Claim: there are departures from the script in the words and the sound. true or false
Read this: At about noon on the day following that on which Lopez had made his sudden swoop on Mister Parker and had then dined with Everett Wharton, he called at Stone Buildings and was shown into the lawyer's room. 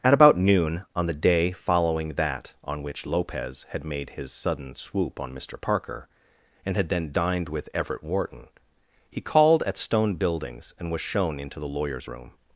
false